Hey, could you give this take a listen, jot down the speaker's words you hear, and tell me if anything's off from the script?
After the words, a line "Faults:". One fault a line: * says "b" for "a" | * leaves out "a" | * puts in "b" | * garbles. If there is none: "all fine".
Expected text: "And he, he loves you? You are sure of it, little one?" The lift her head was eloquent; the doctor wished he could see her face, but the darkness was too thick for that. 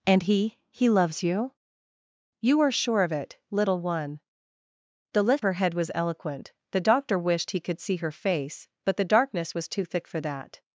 "And he, he loves you? You are sure of it, little one?" The lift her head was eloquent; the doctor wished he could see her face, but the darkness was too thick for that.
Faults:
all fine